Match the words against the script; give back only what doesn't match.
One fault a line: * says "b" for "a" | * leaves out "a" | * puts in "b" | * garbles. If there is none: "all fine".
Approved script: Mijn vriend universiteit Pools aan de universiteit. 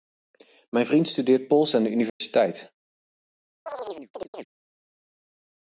* says "studeert" for "universiteit"